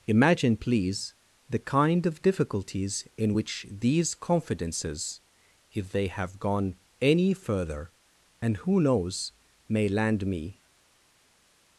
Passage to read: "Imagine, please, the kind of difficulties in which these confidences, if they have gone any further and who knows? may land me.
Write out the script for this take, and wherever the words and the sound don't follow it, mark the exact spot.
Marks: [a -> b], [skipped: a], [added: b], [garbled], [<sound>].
"Imagine, please, the kind of difficulties in which these confidences, if they have gone any further and who knows? may land me.